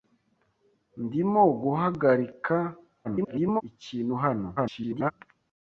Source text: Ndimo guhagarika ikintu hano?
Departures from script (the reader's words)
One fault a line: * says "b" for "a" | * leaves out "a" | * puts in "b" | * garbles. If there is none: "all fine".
* garbles
* garbles